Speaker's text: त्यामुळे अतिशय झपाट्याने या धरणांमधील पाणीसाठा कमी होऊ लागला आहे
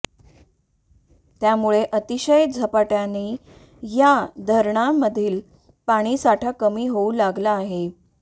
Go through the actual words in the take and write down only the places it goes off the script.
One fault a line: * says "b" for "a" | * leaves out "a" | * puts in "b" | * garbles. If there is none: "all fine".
all fine